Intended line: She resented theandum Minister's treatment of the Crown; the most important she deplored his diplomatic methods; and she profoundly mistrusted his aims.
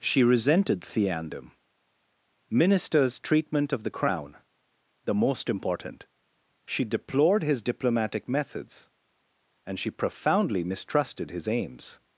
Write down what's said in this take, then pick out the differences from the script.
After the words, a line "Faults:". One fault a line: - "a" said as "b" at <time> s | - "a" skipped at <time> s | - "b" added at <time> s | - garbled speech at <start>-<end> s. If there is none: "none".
She resented theandum Minister's treatment of the Crown; the most important she deplored his diplomatic methods; and she profoundly mistrusted his aims.
Faults:
none